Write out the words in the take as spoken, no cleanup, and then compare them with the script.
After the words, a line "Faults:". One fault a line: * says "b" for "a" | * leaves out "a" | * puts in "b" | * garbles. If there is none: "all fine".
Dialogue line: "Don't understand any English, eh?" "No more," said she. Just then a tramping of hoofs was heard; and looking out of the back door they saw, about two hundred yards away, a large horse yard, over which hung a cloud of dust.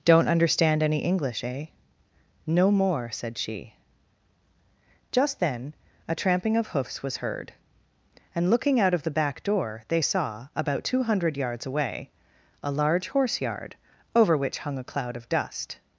"Don't understand any English, eh?" "No more," said she. Just then a tramping of hoofs was heard; and looking out of the back door they saw, about two hundred yards away, a large horse yard, over which hung a cloud of dust.
Faults:
all fine